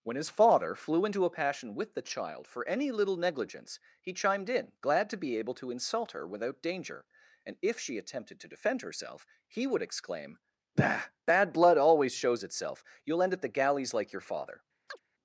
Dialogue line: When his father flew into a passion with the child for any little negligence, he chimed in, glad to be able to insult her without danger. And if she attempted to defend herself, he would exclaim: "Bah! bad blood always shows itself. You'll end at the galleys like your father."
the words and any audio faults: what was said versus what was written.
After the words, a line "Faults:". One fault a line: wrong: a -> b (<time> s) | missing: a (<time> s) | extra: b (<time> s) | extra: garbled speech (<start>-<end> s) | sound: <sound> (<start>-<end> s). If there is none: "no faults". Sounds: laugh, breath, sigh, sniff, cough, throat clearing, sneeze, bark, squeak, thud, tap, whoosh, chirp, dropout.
When his father flew into a passion with the child for any little negligence, he chimed in, glad to be able to insult her without danger. And if she attempted to defend herself, he would exclaim: "Bah! bad blood always shows itself. You'll end at the galleys like your father."
Faults:
sound: chirp (14.9-15.0 s)